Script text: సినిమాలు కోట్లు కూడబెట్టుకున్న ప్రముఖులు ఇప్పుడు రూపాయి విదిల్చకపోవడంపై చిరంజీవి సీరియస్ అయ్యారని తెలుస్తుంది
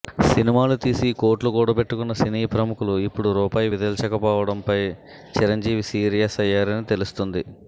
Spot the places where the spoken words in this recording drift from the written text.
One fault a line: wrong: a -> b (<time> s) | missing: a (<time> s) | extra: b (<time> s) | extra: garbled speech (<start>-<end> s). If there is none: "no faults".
extra: తీసి (0.8 s)
extra: సినీ (2.2 s)